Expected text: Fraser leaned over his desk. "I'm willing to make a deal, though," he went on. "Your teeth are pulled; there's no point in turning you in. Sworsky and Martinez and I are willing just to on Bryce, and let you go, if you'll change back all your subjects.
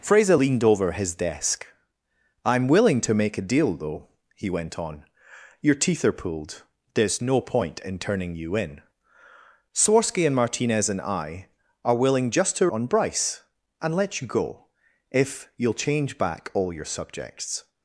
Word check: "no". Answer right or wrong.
right